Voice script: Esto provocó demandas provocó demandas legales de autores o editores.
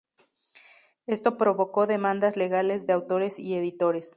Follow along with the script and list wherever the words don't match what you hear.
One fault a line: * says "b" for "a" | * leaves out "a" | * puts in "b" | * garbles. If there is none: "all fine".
* leaves out "provocó demandas"
* says "y" for "o"